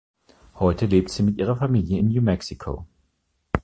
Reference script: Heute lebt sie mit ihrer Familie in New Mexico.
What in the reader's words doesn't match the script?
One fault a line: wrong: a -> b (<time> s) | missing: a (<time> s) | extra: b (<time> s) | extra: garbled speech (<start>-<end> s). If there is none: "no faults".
no faults